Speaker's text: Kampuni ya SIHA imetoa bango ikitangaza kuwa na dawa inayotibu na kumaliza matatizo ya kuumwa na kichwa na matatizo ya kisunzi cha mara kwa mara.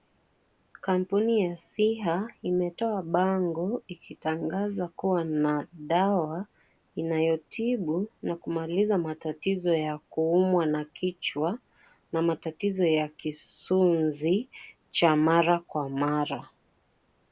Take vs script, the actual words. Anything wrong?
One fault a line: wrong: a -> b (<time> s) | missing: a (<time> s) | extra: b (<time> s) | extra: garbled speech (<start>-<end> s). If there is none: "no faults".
no faults